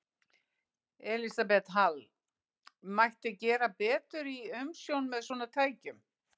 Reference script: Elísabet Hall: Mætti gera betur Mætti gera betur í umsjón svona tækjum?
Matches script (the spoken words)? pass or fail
fail